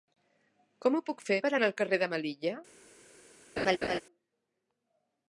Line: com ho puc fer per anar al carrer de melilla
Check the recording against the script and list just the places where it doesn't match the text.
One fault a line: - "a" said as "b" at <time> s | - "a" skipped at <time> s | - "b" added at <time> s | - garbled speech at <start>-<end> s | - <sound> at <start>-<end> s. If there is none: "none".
- laugh at 3.6-4.0 s